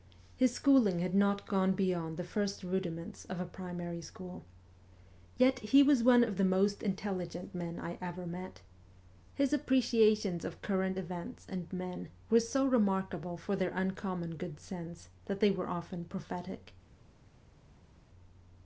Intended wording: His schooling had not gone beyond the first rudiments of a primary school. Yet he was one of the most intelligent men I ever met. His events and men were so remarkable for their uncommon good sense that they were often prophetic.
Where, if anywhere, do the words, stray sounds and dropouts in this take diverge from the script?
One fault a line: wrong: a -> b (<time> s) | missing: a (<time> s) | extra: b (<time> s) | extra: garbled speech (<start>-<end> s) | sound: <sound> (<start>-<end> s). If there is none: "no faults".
extra: appreciations of current (9.5 s)